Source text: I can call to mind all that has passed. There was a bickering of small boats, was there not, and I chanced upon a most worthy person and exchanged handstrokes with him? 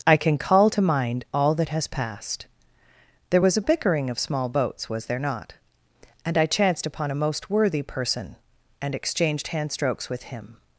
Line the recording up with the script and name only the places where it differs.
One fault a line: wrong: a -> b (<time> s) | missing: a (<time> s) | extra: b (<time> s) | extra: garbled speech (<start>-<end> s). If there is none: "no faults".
no faults